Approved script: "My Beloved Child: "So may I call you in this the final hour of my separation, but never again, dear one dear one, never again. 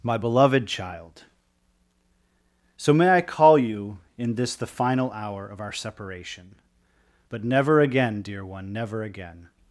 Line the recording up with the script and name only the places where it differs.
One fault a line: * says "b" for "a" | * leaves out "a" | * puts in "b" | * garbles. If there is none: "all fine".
* says "our" for "my"
* leaves out "dear one"